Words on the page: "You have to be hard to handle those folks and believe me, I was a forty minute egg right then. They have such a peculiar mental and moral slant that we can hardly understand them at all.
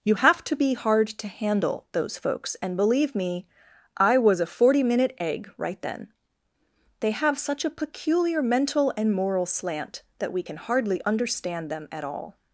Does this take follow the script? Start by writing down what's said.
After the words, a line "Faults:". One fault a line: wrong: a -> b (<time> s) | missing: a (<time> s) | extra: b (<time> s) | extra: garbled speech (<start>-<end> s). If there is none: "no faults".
"You have to be hard to handle those folks and believe me, I was a forty minute egg right then. They have such a peculiar mental and moral slant that we can hardly understand them at all.
Faults:
no faults